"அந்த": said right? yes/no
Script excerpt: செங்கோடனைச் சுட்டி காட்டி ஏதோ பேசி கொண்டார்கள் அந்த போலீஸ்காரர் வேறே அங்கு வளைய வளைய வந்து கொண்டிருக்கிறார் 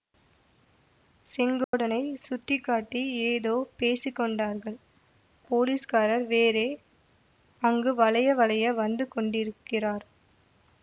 no